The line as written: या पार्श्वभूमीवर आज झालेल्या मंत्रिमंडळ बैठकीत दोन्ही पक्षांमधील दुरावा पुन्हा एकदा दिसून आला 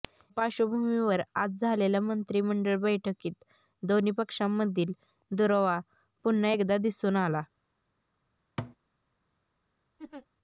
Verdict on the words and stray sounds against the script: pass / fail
fail